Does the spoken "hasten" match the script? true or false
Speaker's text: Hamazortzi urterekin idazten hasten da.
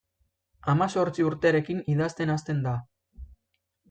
true